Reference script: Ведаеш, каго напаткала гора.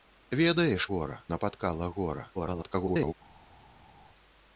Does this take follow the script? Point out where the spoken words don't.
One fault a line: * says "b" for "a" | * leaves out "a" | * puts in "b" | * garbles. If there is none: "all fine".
* says "гора" for "каго"
* garbles